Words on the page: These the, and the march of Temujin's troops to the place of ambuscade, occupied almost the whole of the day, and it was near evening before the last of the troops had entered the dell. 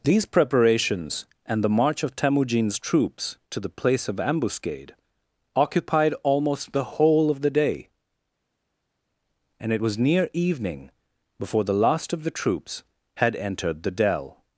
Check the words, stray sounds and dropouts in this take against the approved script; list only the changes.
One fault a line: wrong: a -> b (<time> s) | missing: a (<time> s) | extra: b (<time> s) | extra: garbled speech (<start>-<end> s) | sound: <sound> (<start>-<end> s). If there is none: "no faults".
wrong: the -> preparations (0.2 s)